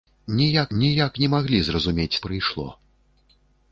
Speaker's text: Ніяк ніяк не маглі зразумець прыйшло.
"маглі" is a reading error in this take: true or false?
false